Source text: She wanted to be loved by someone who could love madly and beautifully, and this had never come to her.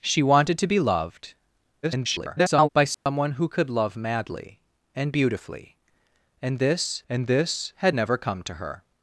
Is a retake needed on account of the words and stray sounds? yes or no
yes